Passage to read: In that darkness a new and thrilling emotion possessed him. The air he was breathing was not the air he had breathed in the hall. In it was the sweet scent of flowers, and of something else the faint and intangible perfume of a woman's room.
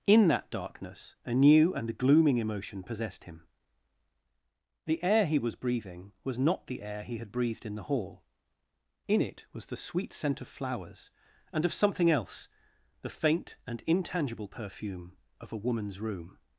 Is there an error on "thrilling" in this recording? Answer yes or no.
yes